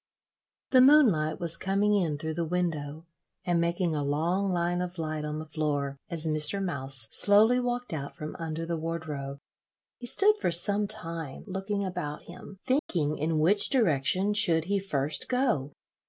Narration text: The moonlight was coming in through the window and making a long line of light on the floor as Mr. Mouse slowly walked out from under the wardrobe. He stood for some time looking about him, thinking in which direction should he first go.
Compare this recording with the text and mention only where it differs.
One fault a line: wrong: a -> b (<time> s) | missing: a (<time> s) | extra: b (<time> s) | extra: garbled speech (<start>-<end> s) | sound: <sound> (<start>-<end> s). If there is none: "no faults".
sound: dropout (12.8-12.9 s)